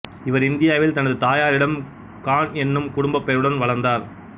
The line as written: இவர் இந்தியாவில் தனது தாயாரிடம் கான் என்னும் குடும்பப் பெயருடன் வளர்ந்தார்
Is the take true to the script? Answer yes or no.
yes